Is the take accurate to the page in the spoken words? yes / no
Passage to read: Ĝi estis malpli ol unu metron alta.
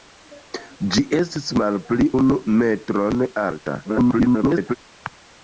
no